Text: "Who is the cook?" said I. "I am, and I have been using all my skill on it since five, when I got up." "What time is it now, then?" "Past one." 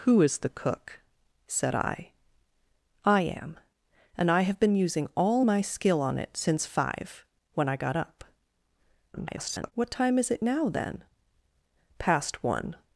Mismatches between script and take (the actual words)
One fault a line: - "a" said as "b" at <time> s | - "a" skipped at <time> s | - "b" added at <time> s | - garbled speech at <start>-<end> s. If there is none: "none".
- garbled speech at 9.1-9.7 s